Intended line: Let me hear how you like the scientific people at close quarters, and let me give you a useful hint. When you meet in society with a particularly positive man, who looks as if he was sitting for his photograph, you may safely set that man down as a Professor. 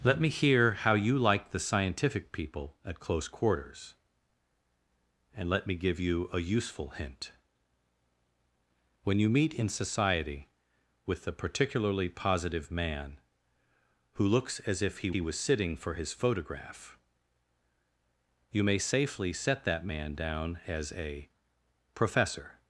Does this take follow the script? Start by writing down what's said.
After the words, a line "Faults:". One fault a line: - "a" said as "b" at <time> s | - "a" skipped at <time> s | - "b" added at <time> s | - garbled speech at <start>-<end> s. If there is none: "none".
Let me hear how you like the scientific people at close quarters, and let me give you a useful hint. When you meet in society with a particularly positive man, who looks as if he he was sitting for his photograph, you may safely set that man down as a Professor.
Faults:
- "he" added at 15.1 s